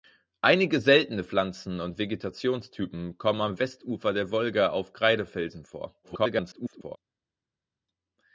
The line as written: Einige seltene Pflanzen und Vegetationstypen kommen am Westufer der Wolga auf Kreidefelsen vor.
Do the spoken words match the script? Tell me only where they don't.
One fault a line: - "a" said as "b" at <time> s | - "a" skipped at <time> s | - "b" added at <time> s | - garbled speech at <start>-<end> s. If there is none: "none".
- garbled speech at 6.0-7.0 s